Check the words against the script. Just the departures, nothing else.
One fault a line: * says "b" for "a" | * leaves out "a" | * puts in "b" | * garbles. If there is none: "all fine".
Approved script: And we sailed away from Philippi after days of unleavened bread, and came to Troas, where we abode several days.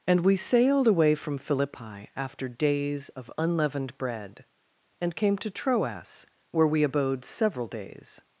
all fine